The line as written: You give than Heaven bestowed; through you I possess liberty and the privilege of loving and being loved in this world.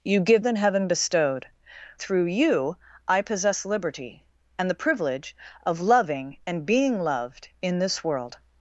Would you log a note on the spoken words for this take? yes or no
no